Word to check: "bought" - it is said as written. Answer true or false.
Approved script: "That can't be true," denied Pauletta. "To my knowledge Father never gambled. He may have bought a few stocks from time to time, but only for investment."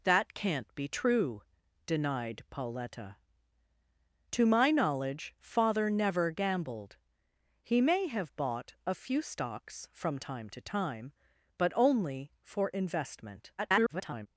true